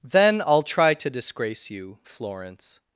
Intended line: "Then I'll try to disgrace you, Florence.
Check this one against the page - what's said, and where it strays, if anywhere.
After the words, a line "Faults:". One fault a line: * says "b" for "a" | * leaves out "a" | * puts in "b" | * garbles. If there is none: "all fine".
"Then I'll try to disgrace you, Florence.
Faults:
all fine